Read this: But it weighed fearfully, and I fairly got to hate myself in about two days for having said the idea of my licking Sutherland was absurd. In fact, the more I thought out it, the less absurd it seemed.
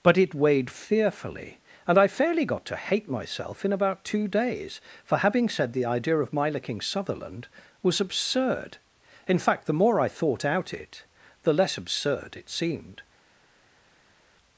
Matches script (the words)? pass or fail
pass